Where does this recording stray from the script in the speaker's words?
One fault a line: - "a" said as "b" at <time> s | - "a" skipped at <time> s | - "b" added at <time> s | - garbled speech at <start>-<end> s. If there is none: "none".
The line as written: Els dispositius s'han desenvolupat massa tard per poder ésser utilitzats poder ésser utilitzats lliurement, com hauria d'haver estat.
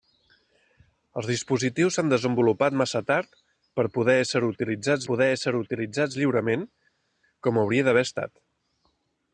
none